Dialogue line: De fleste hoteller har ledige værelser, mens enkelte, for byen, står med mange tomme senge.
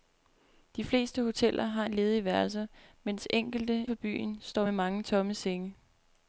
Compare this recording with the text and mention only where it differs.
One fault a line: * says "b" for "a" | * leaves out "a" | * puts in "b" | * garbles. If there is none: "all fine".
all fine